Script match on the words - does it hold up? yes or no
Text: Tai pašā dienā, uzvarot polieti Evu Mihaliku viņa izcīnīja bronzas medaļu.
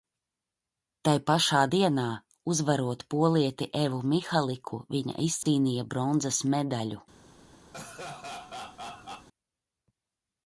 yes